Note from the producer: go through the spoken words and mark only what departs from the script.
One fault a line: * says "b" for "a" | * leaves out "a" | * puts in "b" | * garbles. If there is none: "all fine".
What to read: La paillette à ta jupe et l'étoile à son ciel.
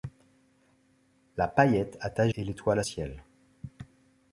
* leaves out "jupe"
* leaves out "son"